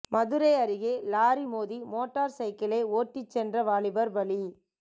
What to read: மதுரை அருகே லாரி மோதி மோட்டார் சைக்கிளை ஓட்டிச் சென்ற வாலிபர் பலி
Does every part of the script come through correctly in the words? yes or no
yes